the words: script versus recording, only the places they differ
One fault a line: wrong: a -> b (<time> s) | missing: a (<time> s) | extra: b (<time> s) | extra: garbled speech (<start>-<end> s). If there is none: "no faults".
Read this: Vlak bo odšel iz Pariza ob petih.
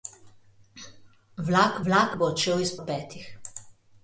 extra: vlak (1.9 s)
missing: Pariza (2.7 s)